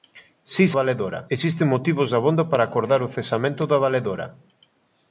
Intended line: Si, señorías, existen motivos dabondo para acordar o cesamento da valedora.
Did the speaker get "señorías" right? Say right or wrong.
wrong